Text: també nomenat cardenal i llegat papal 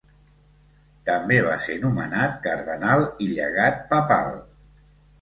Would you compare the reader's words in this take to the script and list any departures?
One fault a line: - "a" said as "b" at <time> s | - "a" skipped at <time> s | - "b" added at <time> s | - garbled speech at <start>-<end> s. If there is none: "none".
- "va ser" added at 1.5 s